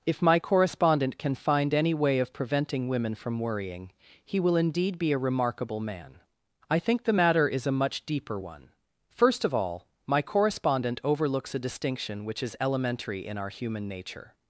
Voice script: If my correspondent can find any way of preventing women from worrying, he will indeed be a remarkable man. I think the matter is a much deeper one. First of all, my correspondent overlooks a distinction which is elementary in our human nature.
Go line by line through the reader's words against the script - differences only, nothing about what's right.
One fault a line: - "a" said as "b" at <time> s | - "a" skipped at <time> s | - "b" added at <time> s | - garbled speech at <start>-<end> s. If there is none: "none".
none